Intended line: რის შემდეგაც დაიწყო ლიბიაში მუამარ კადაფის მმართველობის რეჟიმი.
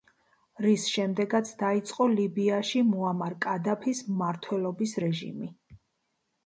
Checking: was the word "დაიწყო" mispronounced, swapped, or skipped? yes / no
no